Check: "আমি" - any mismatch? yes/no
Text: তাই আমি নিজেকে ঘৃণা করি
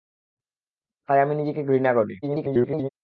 no